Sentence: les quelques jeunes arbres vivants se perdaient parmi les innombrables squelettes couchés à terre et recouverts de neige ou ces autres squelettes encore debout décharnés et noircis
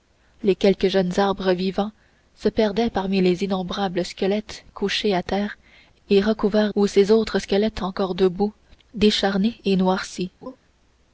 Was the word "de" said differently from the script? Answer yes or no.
yes